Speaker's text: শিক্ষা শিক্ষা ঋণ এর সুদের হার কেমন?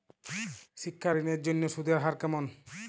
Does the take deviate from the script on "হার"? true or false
false